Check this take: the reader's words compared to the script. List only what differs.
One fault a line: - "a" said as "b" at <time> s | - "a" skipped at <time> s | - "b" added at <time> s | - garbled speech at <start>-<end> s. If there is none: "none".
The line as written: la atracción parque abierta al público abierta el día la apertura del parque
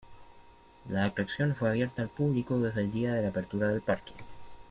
- "parque" said as "fue" at 1.6 s
- "abierta" said as "desde" at 2.6 s
- "de" added at 3.1 s